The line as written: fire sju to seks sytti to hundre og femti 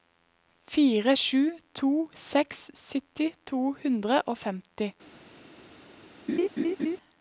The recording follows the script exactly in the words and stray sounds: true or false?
false